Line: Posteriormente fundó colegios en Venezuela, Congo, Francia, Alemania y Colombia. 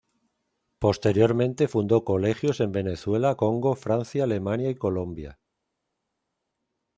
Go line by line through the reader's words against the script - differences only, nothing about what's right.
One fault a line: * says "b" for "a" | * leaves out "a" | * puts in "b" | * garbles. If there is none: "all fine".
all fine